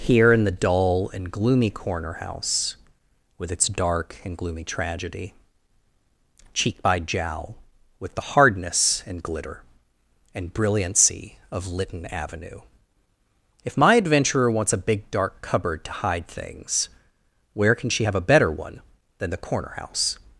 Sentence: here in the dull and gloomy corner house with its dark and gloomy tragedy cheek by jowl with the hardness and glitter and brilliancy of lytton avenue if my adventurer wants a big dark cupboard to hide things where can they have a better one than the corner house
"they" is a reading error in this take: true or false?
true